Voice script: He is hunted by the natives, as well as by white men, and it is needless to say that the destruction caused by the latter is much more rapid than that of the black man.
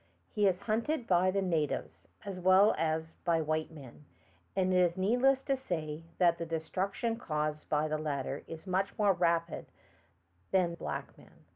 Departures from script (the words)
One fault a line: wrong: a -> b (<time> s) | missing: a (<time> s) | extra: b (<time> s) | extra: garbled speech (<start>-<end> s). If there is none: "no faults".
missing: that of the (10.8 s)